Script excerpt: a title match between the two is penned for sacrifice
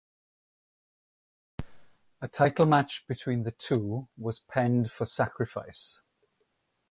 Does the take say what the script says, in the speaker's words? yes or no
no